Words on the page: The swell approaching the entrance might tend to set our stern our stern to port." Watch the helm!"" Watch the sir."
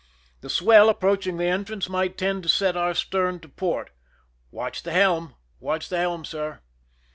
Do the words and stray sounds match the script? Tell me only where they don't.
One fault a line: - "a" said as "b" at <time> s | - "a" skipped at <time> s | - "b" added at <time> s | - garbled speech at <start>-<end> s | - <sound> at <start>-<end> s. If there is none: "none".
- "our stern" skipped at 3.4 s
- "helm" added at 6.0 s